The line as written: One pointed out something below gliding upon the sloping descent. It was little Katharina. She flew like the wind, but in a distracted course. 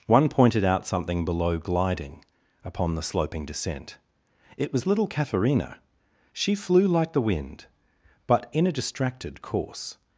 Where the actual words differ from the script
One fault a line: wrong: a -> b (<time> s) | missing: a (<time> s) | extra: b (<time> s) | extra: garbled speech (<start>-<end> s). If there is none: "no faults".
no faults